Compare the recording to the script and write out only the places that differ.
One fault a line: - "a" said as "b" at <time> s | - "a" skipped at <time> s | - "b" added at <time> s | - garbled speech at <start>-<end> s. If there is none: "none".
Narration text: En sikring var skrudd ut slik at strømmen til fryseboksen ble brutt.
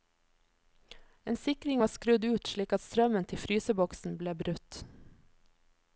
none